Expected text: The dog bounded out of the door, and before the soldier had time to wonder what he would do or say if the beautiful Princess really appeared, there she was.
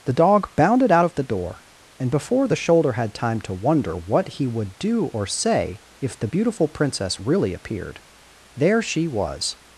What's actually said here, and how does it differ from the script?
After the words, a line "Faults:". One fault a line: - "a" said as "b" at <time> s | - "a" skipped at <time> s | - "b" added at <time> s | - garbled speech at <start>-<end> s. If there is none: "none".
The dog bounded out of the door, and before the shoulder had time to wonder what he would do or say if the beautiful Princess really appeared, there she was.
Faults:
- "soldier" said as "shoulder" at 2.5 s